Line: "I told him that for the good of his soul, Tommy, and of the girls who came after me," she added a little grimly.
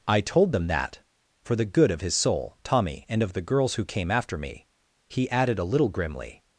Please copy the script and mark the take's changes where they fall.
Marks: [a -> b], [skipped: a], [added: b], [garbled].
"I told [him -> them] that for the good of his soul, Tommy, and of the girls who came after me," [she -> he] added a little grimly.